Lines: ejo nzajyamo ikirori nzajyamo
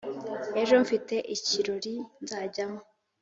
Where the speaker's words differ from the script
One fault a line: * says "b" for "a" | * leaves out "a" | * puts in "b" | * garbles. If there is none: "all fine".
* says "mfite" for "nzajyamo"